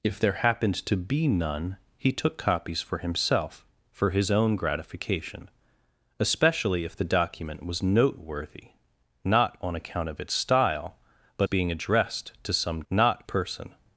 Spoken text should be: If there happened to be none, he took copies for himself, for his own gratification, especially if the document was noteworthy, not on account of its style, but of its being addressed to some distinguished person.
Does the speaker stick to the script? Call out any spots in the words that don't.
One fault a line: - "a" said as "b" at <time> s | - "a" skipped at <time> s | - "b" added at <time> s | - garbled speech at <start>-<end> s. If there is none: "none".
- "of its" skipped at 11.5 s
- "distinguished" said as "not" at 12.9 s